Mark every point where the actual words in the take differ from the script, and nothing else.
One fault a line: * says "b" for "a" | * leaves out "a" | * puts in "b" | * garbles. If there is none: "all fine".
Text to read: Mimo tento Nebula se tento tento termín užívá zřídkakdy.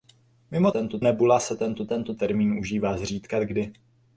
all fine